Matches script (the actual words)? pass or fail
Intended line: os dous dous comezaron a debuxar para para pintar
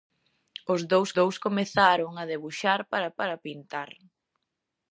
pass